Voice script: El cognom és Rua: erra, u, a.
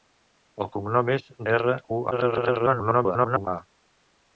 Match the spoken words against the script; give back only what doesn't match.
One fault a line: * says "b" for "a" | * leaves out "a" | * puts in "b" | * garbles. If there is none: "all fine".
* leaves out "Rua"
* garbles